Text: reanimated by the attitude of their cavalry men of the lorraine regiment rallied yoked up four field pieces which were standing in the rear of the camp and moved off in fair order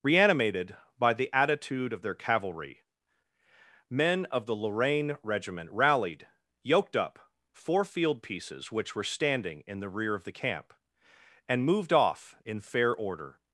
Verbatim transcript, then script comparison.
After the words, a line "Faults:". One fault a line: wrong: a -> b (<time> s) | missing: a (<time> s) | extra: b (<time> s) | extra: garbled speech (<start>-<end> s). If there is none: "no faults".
reanimated by the attitude of their cavalry men of the lorraine regiment rallied yoked up four field pieces which were standing in the rear of the camp and moved off in fair order
Faults:
no faults